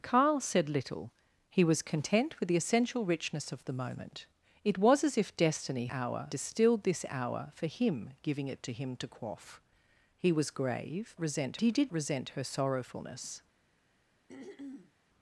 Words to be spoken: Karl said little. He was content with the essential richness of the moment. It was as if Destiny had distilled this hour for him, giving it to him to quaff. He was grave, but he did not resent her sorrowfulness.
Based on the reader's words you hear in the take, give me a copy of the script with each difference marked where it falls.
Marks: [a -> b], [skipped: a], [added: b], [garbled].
Karl said little. He was content with the essential richness of the moment. It was as if Destiny [had -> hour] distilled this hour for him, giving it to him to quaff. He was grave, [but -> resent] he did [skipped: not] resent her sorrowfulness.